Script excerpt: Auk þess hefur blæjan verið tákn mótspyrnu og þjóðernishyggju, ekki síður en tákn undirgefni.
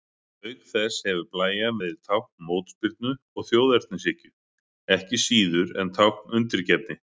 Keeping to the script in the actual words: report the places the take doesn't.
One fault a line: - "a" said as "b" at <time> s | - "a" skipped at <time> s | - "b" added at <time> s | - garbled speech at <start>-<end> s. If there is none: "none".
none